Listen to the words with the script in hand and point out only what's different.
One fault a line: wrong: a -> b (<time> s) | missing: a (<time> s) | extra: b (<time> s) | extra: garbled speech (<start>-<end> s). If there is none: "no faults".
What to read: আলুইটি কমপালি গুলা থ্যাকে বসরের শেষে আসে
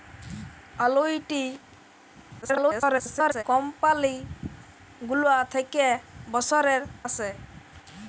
extra: garbled speech (2.4-3.4 s)
missing: শেষে (6.8 s)